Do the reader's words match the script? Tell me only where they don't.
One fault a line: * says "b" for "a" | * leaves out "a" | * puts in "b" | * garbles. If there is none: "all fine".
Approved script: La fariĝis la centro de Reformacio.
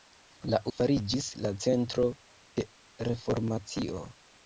all fine